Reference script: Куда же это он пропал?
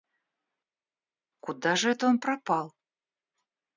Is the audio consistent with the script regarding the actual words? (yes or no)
yes